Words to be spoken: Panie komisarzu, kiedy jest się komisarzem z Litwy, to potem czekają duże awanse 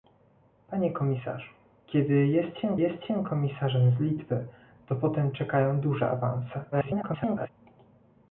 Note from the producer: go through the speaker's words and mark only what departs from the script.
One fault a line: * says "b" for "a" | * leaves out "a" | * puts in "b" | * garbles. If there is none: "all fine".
* puts in "jest się"
* garbles